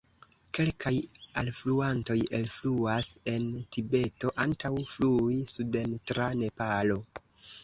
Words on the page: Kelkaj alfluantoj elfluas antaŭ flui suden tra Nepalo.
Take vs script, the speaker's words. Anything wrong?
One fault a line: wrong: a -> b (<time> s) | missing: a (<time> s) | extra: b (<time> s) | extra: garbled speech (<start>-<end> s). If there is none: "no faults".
extra: en Tibeto (3.4 s)